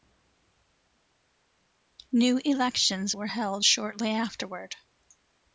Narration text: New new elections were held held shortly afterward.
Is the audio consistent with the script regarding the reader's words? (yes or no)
no